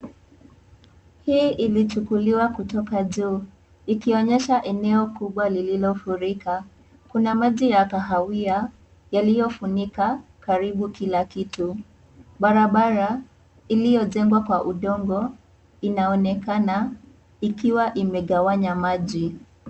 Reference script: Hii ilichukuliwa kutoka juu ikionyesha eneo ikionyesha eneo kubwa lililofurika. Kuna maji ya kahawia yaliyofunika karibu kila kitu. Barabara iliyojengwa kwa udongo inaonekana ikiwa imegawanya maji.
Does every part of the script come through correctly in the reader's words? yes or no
no